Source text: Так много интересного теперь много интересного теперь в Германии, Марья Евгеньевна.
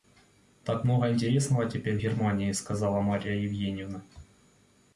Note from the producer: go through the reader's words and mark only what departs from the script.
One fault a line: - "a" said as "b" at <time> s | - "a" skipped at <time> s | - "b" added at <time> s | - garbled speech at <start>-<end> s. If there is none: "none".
- "много интересного теперь" skipped at 2.0 s
- "сказала" added at 2.5 s